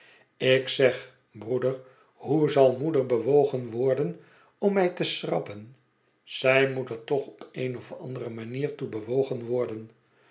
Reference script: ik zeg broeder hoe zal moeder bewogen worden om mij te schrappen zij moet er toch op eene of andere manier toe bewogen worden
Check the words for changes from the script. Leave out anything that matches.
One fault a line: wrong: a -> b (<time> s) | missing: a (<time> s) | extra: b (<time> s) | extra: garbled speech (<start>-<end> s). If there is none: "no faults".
no faults